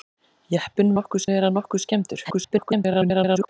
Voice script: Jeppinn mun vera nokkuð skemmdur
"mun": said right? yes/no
no